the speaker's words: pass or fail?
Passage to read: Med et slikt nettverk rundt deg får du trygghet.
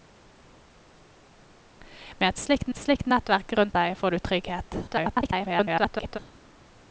fail